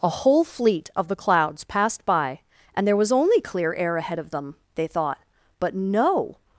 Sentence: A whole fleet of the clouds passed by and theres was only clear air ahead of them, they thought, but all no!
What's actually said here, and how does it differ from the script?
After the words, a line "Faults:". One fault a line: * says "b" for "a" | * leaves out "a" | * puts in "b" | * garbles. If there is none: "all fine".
A whole fleet of the clouds passed by and there was only clear air ahead of them, they thought, but no!
Faults:
* says "there" for "theres"
* leaves out "all"